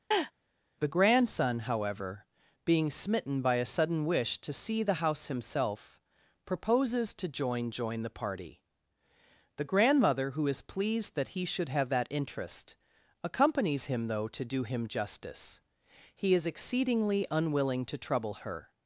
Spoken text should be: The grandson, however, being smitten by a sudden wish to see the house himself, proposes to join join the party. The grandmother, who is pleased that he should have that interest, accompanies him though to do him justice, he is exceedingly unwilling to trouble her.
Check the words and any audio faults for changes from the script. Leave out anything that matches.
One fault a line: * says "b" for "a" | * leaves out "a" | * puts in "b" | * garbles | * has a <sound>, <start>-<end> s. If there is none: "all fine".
* has a laugh, 0.1-0.3 s